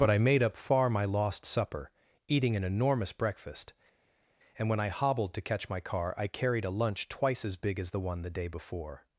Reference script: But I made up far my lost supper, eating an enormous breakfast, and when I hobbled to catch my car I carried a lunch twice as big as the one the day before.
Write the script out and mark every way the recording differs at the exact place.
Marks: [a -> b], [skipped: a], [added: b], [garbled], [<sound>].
But I made up far my lost supper, eating an enormous breakfast, and when I hobbled to catch my car I carried a lunch twice as big as the one the day before.